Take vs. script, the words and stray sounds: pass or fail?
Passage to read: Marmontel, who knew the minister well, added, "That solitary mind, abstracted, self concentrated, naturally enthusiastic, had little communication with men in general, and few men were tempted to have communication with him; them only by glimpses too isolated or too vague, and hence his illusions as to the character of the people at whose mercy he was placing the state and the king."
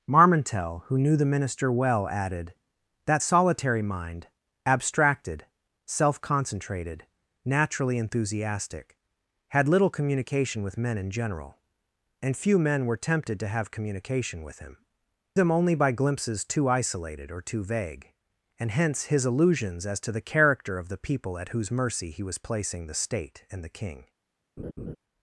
fail